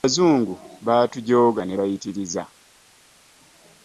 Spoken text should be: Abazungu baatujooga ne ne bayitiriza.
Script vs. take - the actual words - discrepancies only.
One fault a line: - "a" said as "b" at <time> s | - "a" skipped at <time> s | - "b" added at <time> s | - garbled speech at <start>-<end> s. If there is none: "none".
- "ne" skipped at 1.8 s